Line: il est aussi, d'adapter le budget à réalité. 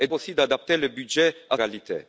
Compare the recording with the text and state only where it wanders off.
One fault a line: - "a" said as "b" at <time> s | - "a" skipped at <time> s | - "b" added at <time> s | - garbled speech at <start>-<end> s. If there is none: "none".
none